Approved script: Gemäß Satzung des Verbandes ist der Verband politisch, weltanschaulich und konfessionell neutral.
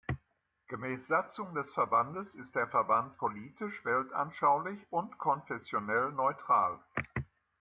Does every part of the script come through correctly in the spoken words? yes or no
yes